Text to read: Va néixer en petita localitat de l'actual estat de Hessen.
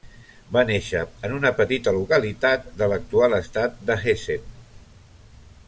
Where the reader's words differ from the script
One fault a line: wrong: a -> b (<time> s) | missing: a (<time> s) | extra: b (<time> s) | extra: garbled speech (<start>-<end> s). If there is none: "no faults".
extra: una (1.4 s)